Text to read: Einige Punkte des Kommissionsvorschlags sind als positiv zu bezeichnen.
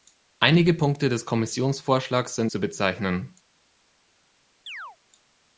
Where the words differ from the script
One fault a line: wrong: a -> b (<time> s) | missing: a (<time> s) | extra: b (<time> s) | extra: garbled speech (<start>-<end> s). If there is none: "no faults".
missing: als positiv (2.5 s)